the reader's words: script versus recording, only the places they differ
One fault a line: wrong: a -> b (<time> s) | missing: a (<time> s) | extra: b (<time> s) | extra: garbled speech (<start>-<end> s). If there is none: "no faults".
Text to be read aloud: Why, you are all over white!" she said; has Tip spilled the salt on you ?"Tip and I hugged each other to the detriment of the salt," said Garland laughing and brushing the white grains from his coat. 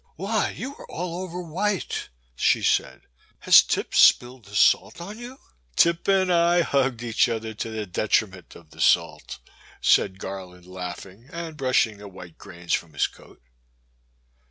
no faults